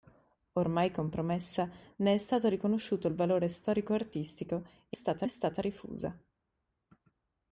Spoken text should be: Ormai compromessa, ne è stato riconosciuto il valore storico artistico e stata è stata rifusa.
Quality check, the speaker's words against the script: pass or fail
pass